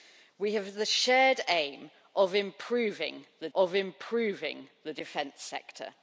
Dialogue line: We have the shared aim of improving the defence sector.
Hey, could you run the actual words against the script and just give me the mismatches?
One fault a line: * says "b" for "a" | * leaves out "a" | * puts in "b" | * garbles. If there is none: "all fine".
* puts in "of improving the"